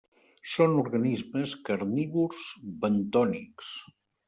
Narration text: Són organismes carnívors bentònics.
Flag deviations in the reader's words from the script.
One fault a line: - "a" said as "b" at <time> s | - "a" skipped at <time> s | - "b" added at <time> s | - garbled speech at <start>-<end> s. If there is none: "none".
none